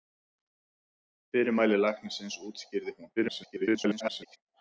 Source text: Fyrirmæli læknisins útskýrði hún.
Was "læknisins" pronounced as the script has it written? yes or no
yes